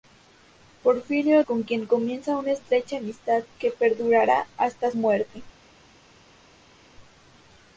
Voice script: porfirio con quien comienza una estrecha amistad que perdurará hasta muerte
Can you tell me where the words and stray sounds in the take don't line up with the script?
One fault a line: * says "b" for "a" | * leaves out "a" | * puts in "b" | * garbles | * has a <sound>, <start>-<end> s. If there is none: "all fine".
all fine